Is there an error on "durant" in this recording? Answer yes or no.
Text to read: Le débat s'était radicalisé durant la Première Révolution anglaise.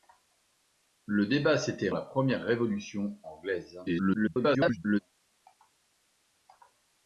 yes